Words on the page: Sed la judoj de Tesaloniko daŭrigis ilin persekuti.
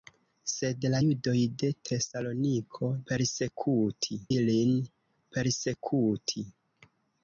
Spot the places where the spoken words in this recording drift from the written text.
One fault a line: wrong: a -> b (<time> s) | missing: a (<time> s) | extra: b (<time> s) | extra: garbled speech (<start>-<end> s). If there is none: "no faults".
wrong: daŭrigis -> persekuti (3.1 s)